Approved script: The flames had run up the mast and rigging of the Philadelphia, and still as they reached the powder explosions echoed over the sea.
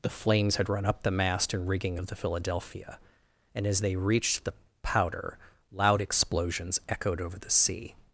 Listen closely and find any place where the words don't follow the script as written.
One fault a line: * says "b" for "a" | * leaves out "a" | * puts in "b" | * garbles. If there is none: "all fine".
* leaves out "still"
* puts in "loud"